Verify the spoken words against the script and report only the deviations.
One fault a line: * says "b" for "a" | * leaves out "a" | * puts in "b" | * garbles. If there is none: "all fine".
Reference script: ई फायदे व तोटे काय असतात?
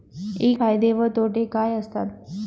all fine